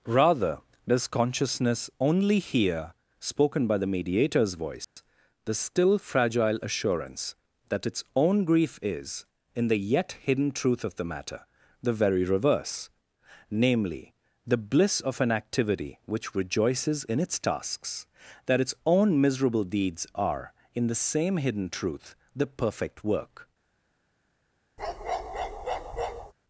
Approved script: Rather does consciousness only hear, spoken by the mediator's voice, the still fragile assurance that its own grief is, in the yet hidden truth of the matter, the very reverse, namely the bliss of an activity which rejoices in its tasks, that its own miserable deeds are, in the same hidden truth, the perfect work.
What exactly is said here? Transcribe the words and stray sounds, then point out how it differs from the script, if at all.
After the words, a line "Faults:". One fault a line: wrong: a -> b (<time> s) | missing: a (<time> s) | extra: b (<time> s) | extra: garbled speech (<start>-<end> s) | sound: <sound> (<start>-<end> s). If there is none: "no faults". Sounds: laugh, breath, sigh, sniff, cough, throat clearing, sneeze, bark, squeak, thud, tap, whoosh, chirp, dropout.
Rather does consciousness only hear, spoken by the mediator's voice, the still fragile assurance that its own grief is, in the yet hidden truth of the matter, the very reverse, namely the bliss of an activity which rejoices in its tasks, that its own miserable deeds are, in the same hidden truth, the perfect work.
Faults:
sound: dropout (4.8-5.0 s)
sound: bark (24.8-26.3 s)